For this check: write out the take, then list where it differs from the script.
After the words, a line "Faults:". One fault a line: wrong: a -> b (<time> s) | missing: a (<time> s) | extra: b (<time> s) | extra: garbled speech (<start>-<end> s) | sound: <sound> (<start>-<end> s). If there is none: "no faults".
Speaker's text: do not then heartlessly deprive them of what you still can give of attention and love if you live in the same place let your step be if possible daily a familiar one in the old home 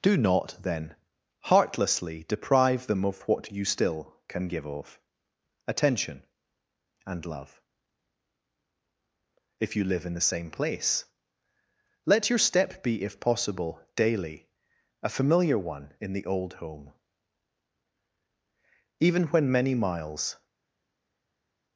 do not then heartlessly deprive them of what you still can give of attention and love if you live in the same place let your step be if possible daily a familiar one in the old home even when many miles
Faults:
extra: even when many miles (19.0 s)